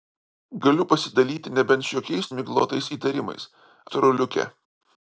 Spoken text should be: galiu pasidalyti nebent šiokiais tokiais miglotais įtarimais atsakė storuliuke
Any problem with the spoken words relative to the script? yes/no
yes